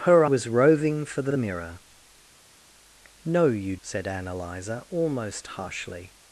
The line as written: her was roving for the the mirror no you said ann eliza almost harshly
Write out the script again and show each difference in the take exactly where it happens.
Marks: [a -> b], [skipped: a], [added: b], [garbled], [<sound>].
her was roving for the the mirror no you said ann eliza almost harshly